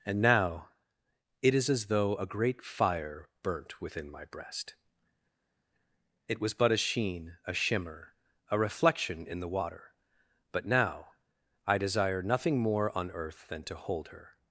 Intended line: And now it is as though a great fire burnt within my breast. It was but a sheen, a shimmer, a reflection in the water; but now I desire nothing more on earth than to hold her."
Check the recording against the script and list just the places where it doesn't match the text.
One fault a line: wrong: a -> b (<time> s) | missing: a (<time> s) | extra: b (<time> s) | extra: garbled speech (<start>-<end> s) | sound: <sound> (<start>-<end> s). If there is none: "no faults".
no faults